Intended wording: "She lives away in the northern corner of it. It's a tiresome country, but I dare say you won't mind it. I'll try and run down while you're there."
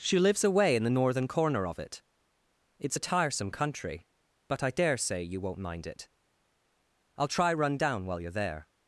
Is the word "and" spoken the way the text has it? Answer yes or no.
no